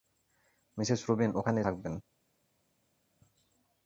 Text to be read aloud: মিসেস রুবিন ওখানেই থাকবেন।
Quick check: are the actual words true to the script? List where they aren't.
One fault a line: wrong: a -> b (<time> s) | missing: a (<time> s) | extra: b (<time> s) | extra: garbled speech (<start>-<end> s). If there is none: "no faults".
no faults